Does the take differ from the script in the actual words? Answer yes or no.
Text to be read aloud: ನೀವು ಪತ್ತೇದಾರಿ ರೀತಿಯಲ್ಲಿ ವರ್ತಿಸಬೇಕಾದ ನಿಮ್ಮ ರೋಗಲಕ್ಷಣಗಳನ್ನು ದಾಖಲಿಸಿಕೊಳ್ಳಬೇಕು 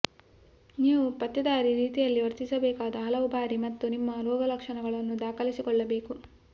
yes